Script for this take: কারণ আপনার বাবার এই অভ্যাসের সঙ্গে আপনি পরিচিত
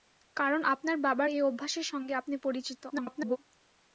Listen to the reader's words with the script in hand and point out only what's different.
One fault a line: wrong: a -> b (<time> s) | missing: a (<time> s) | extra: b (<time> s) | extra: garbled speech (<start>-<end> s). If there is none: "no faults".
extra: garbled speech (2.9-3.4 s)